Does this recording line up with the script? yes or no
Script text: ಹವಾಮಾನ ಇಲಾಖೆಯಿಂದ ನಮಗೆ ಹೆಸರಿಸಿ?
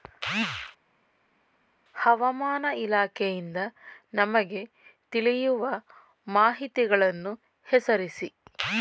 no